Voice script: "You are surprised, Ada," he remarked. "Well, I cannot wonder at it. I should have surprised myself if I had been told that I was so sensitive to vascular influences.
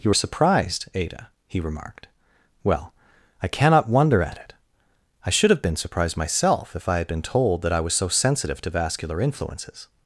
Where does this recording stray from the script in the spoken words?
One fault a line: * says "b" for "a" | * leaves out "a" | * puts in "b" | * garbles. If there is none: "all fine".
* puts in "been"